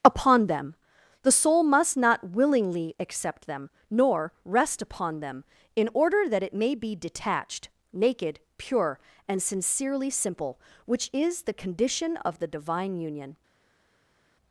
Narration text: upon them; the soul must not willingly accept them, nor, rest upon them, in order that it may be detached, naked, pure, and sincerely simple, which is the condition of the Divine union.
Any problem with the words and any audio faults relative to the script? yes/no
no